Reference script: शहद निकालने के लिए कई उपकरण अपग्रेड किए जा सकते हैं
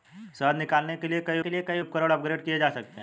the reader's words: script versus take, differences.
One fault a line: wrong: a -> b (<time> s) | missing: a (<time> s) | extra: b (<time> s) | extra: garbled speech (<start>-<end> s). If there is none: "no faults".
extra: के लिए कई (1.4 s)